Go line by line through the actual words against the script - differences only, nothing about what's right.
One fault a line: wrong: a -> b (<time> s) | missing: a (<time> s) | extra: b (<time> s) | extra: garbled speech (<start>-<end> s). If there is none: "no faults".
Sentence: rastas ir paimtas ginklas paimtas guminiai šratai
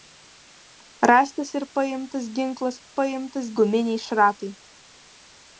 no faults